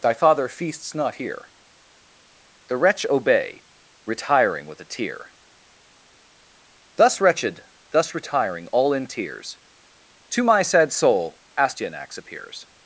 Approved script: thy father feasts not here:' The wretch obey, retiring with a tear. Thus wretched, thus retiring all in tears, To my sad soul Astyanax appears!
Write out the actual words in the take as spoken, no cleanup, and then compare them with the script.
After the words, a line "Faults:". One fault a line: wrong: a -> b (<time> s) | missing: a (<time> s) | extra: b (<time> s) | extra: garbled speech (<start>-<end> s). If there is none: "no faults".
thy father feasts not here:' The wretch obey, retiring with a tear. Thus wretched, thus retiring all in tears, To my sad soul Astyanax appears!
Faults:
no faults